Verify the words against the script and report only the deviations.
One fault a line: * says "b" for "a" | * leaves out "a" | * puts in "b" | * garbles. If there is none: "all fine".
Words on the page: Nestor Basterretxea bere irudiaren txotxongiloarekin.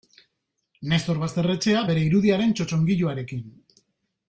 all fine